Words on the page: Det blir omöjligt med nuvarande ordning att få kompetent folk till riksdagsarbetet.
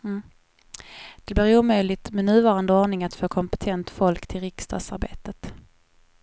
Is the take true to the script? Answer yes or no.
yes